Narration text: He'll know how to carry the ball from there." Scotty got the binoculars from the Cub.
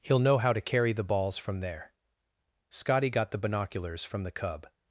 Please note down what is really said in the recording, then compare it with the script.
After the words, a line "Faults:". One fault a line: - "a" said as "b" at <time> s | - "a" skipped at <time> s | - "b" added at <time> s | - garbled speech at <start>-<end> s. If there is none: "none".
He'll know how to carry the balls from there." Scotty got the binoculars from the Cub.
Faults:
- "ball" said as "balls" at 1.0 s